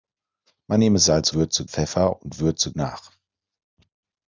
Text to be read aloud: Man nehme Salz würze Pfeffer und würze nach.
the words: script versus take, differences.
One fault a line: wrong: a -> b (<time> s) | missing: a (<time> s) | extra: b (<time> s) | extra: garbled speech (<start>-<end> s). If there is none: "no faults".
no faults